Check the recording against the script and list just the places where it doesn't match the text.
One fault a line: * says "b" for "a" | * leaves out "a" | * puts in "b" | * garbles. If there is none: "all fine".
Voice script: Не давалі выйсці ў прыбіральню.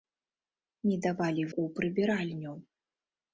* leaves out "выйсці"